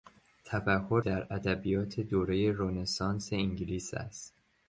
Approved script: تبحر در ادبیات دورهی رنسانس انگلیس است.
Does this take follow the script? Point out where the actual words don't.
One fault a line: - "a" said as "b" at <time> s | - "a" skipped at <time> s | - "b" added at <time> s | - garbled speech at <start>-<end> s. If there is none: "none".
none